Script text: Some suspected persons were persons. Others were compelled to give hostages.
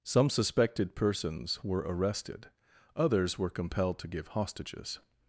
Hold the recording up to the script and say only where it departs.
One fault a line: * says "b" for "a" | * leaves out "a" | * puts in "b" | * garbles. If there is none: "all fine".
* says "arrested" for "persons"